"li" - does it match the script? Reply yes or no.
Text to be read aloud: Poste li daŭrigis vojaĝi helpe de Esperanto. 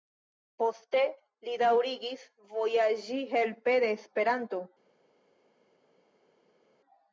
yes